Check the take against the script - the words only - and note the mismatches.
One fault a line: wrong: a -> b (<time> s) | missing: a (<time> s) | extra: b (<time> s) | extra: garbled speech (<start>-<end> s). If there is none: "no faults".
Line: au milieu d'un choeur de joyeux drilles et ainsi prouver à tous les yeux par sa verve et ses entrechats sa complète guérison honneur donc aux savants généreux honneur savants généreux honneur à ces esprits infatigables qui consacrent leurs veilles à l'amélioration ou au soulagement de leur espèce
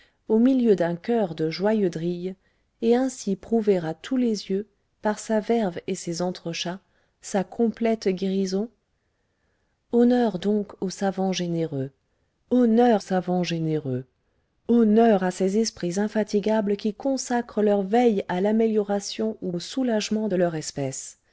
no faults